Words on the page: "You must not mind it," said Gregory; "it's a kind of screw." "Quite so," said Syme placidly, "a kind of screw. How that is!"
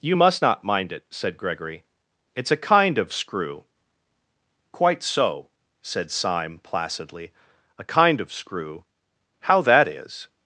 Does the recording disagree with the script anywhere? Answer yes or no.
no